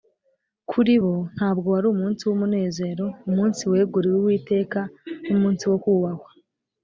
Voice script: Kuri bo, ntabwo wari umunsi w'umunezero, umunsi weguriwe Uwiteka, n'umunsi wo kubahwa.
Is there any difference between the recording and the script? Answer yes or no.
no